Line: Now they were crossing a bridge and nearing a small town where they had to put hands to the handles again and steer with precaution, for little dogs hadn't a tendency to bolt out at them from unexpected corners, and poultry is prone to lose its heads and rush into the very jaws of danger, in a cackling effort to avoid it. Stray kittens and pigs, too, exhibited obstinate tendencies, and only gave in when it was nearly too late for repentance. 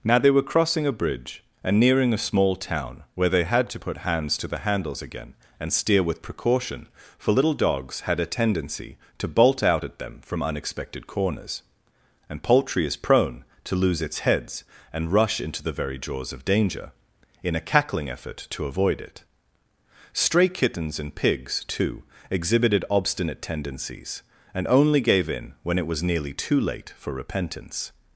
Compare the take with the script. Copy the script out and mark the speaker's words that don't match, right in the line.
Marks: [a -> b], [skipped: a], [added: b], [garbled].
Now they were crossing a bridge and nearing a small town where they had to put hands to the handles again and steer with precaution, for little dogs [hadn't -> had] a tendency to bolt out at them from unexpected corners, and poultry is prone to lose its heads and rush into the very jaws of danger, in a cackling effort to avoid it. Stray kittens and pigs, too, exhibited obstinate tendencies, and only gave in when it was nearly too late for repentance.